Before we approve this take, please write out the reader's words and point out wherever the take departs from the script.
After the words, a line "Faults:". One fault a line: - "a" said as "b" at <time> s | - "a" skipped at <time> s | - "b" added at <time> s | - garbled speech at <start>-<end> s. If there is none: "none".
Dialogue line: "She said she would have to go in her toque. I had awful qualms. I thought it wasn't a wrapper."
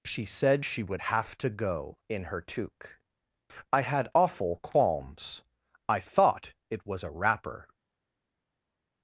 "She said she would have to go in her toque. I had awful qualms. I thought it was a wrapper."
Faults:
- "wasn't" said as "was" at 6.9 s